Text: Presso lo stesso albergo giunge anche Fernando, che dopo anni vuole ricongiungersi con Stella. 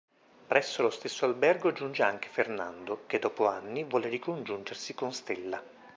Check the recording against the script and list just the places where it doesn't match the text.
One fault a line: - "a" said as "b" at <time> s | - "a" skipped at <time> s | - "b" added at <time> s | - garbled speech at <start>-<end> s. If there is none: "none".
none